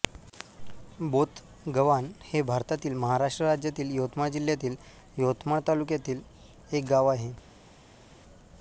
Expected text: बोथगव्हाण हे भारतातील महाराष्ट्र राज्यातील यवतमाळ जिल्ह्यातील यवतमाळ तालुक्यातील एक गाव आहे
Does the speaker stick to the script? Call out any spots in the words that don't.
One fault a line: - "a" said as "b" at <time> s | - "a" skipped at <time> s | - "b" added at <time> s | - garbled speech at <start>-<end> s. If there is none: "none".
none